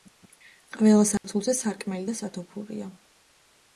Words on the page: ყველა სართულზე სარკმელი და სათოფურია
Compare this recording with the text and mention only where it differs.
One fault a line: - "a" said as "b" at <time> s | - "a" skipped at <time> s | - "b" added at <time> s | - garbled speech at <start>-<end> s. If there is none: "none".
none